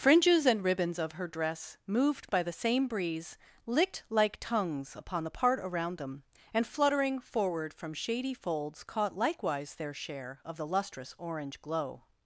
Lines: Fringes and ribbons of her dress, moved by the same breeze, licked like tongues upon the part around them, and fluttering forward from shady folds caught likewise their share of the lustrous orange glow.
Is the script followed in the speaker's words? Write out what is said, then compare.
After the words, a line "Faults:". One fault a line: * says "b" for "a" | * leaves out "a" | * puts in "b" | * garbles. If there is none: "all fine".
Fringes and ribbons of her dress, moved by the same breeze, licked like tongues upon the part around them, and fluttering forward from shady folds caught likewise their share of the lustrous orange glow.
Faults:
all fine